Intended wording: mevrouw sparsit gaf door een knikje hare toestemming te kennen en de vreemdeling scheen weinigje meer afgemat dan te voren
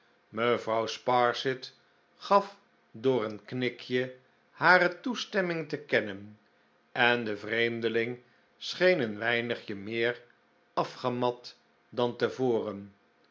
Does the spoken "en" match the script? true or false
true